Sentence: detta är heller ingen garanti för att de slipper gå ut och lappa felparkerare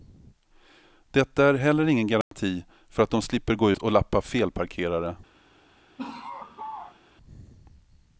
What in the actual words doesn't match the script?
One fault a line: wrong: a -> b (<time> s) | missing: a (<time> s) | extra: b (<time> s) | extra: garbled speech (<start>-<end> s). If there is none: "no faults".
missing: ut (3.7 s)